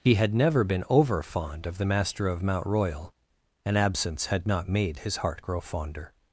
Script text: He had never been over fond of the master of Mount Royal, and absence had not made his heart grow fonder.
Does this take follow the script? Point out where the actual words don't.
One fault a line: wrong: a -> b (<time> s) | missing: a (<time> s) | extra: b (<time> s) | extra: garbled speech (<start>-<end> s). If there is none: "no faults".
no faults